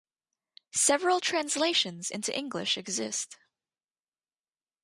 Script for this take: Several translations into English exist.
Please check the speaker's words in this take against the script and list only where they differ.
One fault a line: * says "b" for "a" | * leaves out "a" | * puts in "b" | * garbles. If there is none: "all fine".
all fine